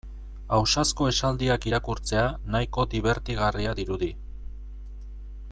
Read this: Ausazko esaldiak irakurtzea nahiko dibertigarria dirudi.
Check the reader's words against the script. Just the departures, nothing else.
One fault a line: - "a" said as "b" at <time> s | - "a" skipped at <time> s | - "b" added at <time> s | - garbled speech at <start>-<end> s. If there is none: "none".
none